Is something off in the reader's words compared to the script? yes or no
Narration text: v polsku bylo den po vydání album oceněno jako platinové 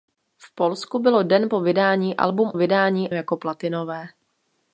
yes